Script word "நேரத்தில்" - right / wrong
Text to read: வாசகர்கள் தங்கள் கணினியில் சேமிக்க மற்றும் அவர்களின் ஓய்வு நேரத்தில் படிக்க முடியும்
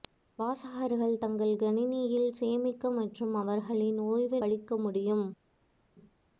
wrong